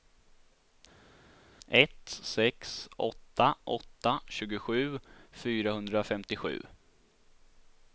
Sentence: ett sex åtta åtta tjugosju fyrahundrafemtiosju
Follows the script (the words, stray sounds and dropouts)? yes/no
yes